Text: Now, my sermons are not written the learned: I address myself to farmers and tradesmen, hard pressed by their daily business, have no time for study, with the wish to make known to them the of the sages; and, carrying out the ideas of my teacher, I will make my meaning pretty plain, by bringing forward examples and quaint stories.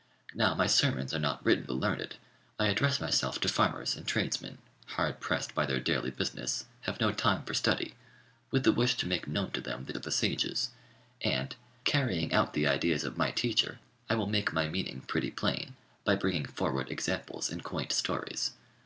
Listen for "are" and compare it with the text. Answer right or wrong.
right